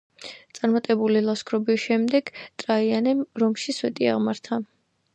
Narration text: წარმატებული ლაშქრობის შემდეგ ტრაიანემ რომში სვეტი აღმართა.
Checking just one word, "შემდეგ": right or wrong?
right